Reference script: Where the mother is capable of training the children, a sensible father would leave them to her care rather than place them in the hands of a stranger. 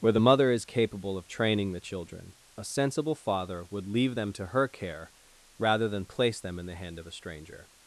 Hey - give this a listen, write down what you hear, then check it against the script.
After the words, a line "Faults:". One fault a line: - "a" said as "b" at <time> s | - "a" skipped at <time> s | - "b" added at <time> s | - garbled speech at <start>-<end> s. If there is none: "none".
Where the mother is capable of training the children, a sensible father would leave them to her care rather than place them in the hand of a stranger.
Faults:
- "hands" said as "hand" at 6.8 s